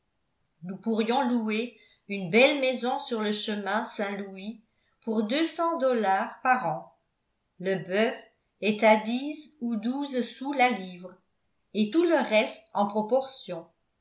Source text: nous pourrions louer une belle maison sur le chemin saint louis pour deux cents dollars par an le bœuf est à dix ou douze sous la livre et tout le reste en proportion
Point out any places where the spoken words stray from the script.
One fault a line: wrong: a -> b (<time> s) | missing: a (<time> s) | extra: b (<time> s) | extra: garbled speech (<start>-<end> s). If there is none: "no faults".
no faults